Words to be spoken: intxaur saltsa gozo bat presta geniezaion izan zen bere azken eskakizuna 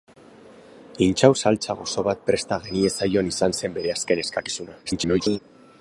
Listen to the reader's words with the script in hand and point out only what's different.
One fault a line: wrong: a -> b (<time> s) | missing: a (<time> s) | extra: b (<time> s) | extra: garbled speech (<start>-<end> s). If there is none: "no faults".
extra: garbled speech (4.9-5.4 s)